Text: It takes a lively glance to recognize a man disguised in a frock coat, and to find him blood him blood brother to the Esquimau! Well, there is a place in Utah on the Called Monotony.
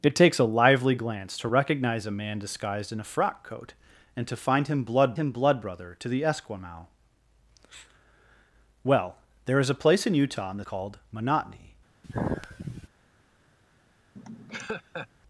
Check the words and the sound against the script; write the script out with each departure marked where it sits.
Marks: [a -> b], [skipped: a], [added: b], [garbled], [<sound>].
It takes a lively glance to recognize a man disguised in a frock coat, and to find him blood him blood brother to the Esquimau! Well, there is a place in Utah on the Called Monotony. [sigh] [laugh]